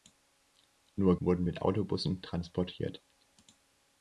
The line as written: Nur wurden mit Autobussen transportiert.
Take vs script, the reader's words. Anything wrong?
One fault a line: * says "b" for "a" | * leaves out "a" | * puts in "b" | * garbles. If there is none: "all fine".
all fine